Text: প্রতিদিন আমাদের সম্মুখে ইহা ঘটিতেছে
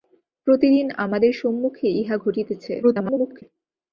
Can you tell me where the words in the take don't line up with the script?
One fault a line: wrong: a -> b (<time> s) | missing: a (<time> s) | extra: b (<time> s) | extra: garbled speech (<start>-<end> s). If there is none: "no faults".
extra: garbled speech (2.8-3.4 s)